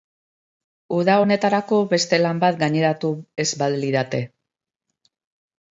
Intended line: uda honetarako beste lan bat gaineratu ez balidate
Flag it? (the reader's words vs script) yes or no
no